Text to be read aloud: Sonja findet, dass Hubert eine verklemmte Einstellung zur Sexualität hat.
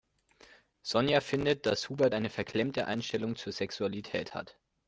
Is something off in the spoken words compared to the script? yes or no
no